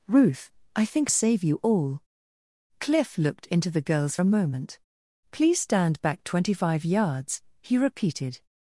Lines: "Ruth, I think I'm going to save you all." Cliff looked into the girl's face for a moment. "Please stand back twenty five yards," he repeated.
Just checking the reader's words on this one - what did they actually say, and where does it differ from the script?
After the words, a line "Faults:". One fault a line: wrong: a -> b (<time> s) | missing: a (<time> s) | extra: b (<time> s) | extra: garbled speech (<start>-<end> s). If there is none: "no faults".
"Ruth, I think Save you all." Cliff looked into the girl's a moment. "Please stand back twenty five yards," he repeated.
Faults:
missing: I'm going to (1.1 s)
missing: face for (4.2 s)